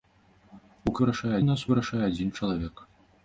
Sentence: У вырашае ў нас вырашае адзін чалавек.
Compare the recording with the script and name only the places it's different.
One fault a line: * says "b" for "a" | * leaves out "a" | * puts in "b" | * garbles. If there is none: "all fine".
all fine